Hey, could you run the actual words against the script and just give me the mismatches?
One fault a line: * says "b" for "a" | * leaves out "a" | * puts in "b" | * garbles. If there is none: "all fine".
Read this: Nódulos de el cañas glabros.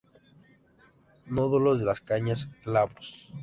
* says "las" for "el"